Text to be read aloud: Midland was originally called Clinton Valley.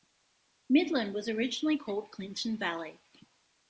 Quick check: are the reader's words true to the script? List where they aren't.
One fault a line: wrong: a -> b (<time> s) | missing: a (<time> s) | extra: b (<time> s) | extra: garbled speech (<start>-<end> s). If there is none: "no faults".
no faults